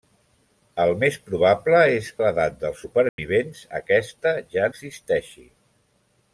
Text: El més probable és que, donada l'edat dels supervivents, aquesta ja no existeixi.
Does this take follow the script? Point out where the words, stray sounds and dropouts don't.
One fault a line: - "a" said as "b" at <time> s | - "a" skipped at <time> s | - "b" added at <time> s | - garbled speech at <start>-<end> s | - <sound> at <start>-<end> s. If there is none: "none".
- "que donada" skipped at 2.1 s
- dropout at 3.1-3.2 s
- "no" skipped at 4.7 s